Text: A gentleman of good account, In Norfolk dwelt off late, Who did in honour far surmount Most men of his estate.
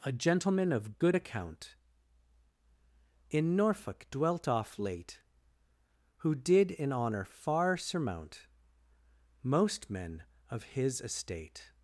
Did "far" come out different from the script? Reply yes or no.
no